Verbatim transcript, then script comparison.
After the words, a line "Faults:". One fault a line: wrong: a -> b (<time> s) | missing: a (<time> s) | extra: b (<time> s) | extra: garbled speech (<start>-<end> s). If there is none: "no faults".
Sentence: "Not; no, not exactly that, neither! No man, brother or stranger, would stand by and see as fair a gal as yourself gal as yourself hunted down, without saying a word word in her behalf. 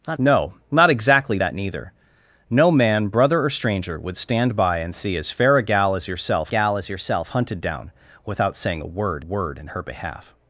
"Not; no, not exactly that, neither! No man, brother or stranger, would stand by and see as fair a gal as yourself gal as yourself hunted down, without saying a word word in her behalf.
Faults:
no faults